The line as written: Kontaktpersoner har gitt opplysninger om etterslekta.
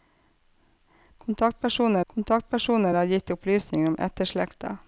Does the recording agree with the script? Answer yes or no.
no